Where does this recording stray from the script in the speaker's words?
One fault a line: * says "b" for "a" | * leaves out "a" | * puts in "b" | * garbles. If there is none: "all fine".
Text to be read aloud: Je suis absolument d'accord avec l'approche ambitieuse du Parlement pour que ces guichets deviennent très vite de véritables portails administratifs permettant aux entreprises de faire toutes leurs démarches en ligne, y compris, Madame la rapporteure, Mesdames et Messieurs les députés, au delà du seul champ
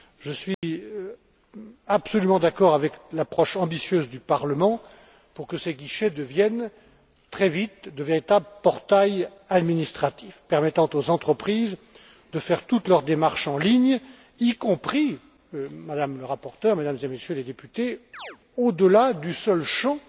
all fine